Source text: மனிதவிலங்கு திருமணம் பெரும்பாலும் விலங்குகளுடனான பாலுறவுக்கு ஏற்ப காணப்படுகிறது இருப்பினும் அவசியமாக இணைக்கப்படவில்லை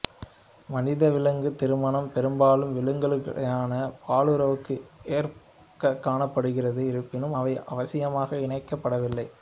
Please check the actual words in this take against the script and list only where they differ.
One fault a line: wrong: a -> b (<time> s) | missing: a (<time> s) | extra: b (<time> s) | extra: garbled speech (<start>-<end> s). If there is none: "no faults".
extra: அவை (7.3 s)